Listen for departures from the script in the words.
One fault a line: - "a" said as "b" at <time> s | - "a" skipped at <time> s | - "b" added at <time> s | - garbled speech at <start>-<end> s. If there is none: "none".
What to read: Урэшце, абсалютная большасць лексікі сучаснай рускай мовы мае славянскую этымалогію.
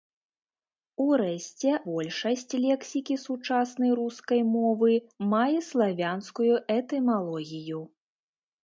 - "абсалютная" skipped at 1.7 s